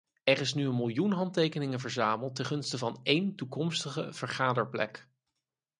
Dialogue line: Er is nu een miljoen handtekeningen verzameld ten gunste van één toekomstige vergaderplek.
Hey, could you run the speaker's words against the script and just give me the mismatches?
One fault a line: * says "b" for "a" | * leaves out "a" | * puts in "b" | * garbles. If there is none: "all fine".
all fine